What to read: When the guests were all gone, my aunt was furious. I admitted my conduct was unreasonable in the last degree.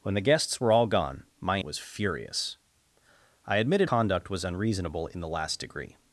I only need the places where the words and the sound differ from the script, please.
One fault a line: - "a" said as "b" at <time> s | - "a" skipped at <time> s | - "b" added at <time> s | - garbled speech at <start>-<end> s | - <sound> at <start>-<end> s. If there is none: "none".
- "aunt" skipped at 1.6 s
- "my" skipped at 3.9 s